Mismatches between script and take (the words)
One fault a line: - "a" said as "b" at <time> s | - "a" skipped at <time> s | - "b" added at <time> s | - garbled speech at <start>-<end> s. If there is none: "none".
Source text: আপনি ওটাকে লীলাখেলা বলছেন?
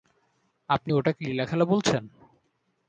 none